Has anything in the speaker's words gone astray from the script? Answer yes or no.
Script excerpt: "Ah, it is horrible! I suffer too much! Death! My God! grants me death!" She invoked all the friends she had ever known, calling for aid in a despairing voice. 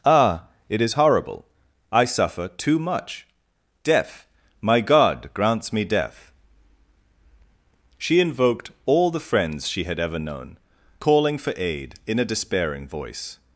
no